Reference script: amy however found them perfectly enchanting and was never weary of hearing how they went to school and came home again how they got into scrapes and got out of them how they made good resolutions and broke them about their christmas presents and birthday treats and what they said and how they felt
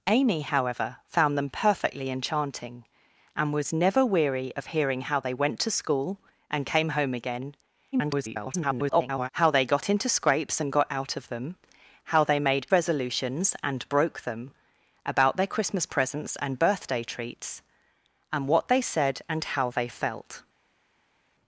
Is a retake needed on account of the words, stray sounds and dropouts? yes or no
yes